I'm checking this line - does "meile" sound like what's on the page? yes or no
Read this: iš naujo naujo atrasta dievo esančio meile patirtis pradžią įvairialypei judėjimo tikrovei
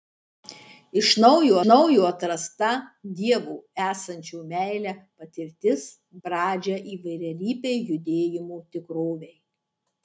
yes